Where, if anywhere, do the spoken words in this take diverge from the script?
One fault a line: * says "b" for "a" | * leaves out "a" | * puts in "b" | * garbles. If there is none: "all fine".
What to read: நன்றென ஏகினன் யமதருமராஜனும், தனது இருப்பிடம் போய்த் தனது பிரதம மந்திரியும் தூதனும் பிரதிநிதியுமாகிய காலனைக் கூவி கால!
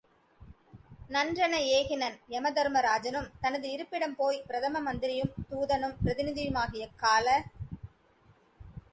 * leaves out "தனது"
* leaves out "காலனைக் கூவி"